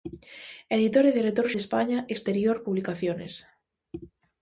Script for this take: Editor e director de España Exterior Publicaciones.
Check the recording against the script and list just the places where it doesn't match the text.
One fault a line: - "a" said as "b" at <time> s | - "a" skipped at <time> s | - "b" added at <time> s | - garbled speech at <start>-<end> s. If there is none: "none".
none